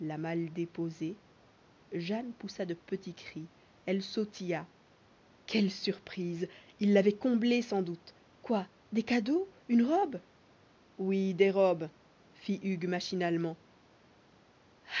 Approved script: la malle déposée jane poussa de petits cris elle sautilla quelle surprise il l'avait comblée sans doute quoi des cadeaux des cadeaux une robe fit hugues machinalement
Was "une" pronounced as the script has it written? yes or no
no